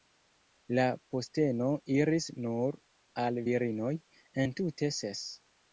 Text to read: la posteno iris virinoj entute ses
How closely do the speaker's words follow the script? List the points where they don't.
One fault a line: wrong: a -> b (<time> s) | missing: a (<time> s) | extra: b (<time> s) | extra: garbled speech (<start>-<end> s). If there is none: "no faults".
extra: nur al (2.5 s)